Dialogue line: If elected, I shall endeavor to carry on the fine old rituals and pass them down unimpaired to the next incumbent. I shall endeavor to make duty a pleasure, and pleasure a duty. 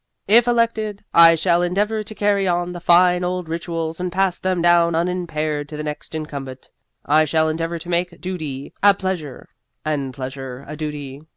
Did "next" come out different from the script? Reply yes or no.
no